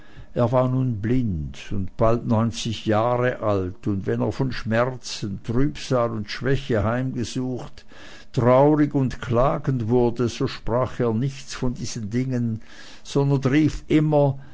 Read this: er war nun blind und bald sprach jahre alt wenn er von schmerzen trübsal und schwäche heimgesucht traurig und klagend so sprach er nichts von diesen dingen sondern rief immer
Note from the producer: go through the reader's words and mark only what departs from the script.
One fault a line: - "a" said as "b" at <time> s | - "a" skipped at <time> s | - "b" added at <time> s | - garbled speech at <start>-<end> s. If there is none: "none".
- "sprach" said as "neunzig" at 2.2 s
- "und" added at 3.9 s
- "wurde" added at 9.9 s